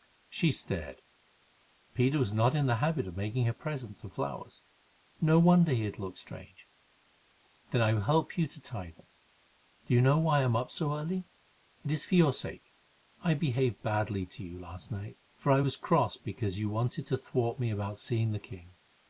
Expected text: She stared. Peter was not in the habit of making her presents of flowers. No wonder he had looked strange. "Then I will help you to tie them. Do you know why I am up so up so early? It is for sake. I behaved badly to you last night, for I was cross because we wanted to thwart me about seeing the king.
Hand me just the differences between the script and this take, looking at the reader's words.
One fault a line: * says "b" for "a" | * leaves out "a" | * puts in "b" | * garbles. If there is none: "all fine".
* leaves out "up so"
* puts in "your"
* says "you" for "we"